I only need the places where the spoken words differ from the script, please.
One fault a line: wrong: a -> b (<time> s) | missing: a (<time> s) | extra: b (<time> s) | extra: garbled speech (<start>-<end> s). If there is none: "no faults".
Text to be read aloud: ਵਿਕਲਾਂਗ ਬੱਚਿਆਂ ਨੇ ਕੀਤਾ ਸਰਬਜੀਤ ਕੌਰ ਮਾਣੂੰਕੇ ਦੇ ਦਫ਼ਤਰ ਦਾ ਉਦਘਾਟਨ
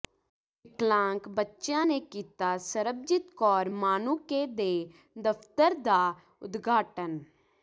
no faults